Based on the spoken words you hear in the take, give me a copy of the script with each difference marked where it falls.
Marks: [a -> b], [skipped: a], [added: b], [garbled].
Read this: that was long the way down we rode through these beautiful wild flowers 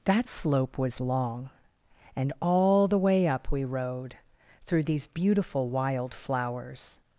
that [added: slope] was long [added: and all] the way [down -> up] we rode through these beautiful wild flowers